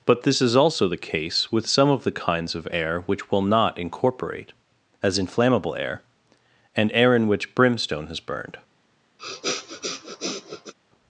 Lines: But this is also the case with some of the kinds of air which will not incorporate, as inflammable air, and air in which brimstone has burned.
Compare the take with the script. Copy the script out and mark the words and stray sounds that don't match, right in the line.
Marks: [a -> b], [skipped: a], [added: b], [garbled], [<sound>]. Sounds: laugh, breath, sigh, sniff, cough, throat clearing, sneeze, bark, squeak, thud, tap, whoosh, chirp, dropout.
But this is also the case with some of the kinds of air which will not incorporate, as inflammable air, and air in which brimstone has burned. [sniff]